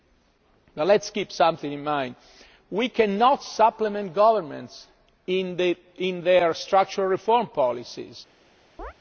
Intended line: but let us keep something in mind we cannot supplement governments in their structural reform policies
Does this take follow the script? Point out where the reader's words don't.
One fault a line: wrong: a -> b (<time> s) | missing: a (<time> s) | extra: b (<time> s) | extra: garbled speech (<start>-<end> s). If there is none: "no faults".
no faults